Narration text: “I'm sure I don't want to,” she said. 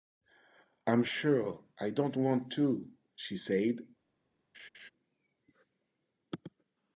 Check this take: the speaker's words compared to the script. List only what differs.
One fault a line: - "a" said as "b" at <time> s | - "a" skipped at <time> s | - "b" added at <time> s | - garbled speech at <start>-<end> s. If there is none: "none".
none